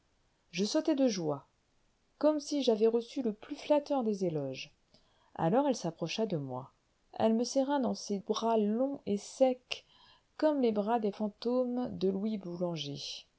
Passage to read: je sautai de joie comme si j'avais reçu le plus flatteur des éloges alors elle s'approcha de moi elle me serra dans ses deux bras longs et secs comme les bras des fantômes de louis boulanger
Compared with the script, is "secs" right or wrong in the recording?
right